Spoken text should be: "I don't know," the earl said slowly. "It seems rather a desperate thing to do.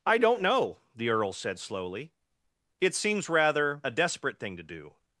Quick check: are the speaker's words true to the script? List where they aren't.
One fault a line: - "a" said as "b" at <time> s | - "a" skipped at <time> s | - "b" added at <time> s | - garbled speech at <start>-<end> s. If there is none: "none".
none